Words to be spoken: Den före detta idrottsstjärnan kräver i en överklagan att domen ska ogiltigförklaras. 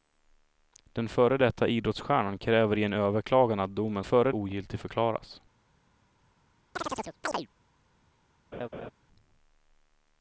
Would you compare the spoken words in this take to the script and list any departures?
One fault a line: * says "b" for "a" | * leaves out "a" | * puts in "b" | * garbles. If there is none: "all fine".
* says "före" for "ska"